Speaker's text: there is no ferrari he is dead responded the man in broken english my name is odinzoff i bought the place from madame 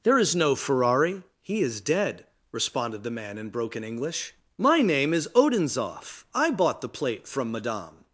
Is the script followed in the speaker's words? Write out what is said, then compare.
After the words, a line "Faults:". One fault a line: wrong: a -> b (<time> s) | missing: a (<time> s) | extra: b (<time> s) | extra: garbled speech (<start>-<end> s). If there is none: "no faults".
there is no ferrari he is dead responded the man in broken english my name is odinzoff i bought the plate from madame
Faults:
wrong: place -> plate (6.9 s)